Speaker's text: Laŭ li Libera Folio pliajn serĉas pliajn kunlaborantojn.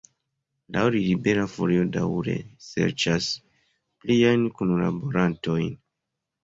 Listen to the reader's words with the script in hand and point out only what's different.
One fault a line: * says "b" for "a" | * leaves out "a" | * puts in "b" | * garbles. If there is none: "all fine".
* says "daŭre" for "pliajn"